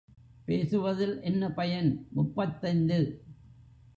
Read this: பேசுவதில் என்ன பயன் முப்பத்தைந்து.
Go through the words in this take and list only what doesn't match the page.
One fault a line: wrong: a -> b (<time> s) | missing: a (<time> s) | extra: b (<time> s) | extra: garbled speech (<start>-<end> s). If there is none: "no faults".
no faults